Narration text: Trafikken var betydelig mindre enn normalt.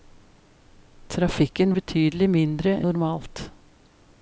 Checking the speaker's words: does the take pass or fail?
fail